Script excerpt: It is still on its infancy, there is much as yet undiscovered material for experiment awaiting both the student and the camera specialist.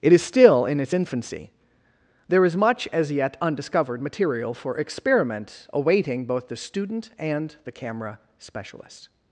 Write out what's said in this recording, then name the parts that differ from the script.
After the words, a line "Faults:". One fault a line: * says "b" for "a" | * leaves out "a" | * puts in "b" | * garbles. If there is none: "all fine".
It is still in its infancy, there is much as yet undiscovered material for experiment awaiting both the student and the camera specialist.
Faults:
* says "in" for "on"